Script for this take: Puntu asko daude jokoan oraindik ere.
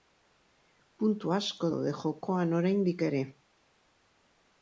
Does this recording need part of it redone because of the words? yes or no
no